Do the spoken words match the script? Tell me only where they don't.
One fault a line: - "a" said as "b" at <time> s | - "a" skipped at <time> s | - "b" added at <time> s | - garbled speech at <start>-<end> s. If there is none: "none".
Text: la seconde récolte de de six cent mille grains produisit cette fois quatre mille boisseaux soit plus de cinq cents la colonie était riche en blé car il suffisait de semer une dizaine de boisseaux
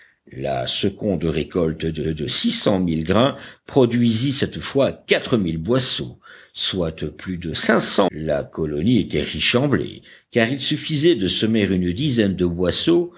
none